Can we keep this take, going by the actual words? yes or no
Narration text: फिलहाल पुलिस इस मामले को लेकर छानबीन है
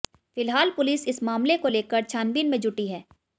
no